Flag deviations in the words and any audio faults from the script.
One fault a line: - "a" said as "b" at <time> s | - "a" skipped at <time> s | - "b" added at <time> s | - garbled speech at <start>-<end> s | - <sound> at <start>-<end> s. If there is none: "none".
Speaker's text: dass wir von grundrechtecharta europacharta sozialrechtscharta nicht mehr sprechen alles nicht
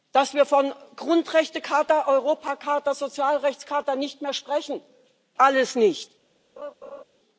- laugh at 6.6-7.0 s